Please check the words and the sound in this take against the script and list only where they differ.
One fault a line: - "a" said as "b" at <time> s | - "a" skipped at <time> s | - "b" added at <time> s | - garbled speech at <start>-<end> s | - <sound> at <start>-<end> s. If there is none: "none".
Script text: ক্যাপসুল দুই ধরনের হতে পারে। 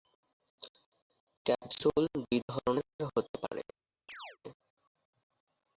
- chirp at 4.1-4.4 s